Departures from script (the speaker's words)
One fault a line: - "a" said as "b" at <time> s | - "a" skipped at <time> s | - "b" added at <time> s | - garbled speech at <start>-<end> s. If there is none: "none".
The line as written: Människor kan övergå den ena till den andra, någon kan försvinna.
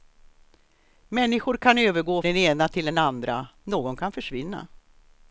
none